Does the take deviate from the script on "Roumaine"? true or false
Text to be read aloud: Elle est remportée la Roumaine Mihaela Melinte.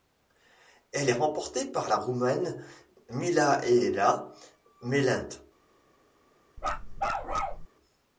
false